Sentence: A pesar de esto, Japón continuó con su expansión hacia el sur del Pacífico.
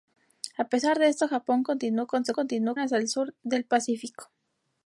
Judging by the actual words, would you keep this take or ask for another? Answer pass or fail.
fail